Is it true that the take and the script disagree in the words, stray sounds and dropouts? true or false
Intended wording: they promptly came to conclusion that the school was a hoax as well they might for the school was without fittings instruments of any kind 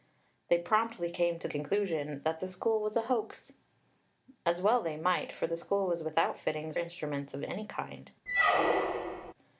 true